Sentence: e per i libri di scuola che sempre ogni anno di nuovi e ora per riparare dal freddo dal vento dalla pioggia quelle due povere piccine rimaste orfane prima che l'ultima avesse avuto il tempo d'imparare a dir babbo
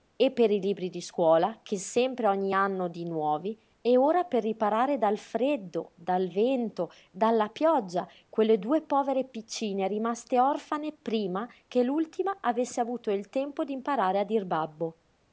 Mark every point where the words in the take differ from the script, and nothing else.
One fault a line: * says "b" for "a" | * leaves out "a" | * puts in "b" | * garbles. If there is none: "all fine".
all fine